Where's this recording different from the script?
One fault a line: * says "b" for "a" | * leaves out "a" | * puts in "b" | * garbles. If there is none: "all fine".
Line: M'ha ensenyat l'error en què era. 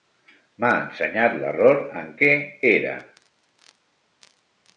all fine